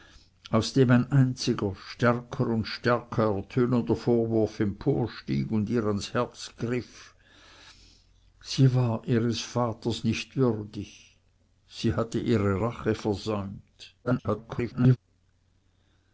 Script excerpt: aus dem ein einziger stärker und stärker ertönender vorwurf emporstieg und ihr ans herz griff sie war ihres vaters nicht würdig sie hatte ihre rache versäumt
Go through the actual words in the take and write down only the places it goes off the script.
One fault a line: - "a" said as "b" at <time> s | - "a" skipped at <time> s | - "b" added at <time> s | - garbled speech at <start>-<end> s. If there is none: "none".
- garbled speech at 14.0-15.0 s